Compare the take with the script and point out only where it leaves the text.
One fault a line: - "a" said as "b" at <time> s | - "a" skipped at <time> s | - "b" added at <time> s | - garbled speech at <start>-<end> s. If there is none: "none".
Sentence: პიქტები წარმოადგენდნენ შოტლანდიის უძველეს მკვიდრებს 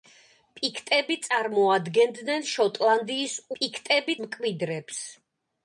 - "უძველეს" said as "პიქტები" at 3.6 s